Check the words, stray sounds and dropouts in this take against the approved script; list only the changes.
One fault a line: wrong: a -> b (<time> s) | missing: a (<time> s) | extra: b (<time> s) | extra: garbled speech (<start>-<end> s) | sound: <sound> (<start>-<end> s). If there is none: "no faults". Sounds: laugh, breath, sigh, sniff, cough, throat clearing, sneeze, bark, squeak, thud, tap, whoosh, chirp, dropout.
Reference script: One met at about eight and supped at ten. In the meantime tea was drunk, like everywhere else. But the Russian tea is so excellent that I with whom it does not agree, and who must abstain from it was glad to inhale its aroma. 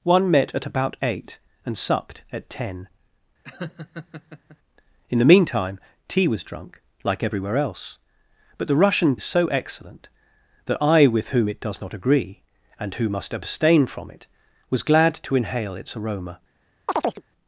sound: laugh (3.4-4.6 s)
missing: tea (9.2 s)
sound: chirp (16.9-17.2 s)